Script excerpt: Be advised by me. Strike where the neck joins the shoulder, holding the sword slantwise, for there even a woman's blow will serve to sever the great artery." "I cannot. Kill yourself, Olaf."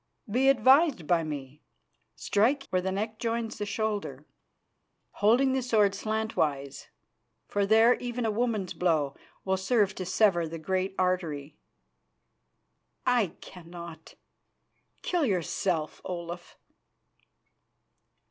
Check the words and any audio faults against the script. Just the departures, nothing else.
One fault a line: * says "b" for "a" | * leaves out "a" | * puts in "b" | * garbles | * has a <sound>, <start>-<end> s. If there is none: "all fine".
all fine